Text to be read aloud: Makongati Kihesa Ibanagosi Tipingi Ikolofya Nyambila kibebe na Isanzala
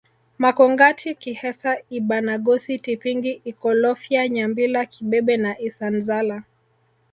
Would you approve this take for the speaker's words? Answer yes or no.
yes